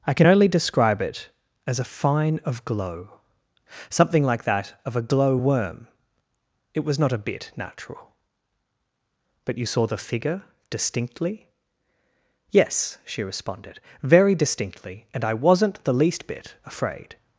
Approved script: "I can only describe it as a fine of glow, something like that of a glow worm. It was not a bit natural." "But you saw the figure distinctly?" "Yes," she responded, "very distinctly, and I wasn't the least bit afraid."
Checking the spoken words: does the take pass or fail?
pass